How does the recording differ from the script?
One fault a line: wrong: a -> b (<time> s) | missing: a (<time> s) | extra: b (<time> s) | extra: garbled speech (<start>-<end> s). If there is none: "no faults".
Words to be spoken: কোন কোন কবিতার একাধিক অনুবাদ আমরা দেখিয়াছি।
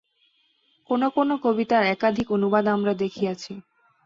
no faults